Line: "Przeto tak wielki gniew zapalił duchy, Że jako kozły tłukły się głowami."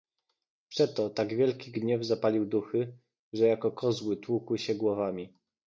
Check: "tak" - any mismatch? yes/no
no